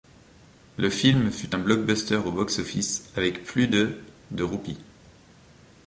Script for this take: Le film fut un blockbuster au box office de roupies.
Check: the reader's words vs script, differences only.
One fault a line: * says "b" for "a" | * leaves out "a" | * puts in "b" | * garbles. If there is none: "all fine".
* puts in "avec plus de"